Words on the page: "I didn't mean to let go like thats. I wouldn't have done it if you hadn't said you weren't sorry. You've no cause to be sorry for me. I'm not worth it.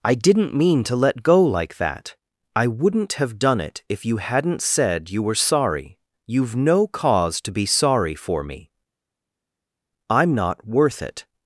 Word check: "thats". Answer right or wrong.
wrong